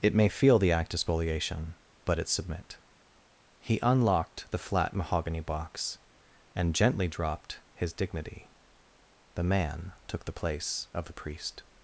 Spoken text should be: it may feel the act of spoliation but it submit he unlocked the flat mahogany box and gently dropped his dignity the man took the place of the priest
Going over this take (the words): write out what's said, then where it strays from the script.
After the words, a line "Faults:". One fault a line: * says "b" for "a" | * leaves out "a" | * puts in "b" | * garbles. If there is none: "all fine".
it may feel the act of spoliation but it submit he unlocked the flat mahogany box and gently dropped his dignity the man took the place of the priest
Faults:
all fine